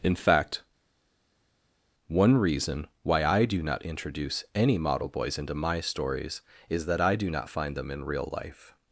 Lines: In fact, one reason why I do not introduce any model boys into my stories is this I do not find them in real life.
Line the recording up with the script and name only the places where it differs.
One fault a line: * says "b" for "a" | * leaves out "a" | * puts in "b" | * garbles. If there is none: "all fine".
* says "that" for "this"